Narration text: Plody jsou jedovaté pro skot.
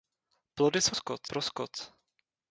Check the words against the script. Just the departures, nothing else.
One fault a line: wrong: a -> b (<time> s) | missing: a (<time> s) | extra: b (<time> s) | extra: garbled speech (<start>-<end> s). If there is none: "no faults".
wrong: jedovaté -> skot (0.9 s)